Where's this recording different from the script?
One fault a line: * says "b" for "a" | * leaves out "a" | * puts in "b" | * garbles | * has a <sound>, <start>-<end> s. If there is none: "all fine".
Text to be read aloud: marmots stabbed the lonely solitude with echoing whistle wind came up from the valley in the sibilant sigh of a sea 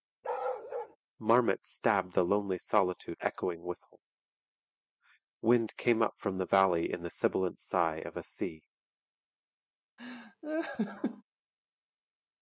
* has a bark, 0.2-1.0 s
* leaves out "with"
* has a laugh, 10.0-11.2 s